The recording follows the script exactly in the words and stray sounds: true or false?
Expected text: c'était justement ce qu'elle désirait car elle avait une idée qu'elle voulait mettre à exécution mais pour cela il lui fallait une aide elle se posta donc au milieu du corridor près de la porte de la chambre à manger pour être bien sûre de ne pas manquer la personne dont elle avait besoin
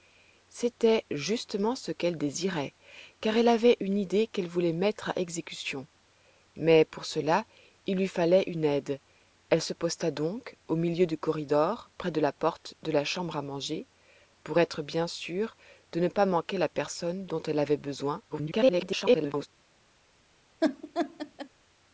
false